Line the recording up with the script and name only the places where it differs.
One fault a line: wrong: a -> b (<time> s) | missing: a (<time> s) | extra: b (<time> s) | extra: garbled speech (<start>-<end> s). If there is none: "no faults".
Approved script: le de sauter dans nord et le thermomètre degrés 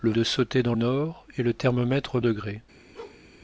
no faults